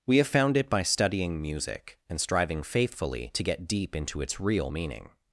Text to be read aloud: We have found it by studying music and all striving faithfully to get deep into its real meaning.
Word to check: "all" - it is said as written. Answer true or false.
false